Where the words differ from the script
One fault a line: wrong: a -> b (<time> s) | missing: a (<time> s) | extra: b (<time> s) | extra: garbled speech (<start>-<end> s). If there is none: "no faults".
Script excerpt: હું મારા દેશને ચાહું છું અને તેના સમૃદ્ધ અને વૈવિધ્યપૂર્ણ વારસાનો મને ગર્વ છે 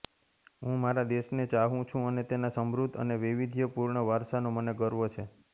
no faults